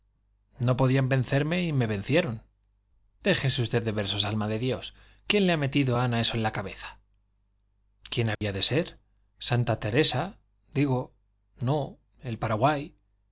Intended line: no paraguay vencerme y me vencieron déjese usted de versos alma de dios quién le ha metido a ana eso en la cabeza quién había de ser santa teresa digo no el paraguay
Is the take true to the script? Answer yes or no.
no